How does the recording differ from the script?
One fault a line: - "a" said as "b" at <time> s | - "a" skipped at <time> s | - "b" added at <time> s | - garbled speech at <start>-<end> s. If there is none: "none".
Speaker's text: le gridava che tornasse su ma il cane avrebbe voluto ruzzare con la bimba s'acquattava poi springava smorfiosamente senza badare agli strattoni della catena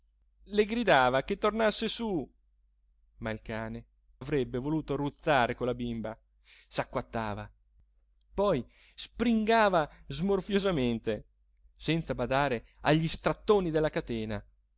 none